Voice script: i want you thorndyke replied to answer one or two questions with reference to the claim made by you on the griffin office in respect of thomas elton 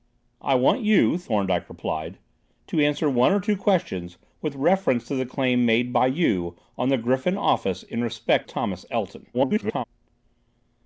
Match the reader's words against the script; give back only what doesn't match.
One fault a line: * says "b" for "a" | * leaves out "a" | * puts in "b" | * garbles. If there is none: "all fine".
* leaves out "of"
* garbles